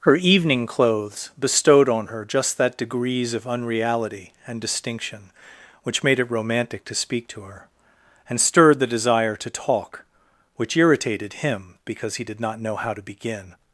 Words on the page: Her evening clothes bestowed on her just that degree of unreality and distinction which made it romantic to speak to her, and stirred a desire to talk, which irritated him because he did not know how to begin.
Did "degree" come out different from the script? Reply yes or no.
yes